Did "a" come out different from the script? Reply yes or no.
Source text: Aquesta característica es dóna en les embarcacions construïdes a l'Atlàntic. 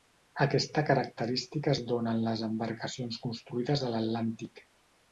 no